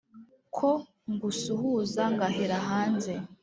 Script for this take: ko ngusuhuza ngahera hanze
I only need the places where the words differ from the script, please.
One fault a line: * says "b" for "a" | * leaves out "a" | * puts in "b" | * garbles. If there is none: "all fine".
all fine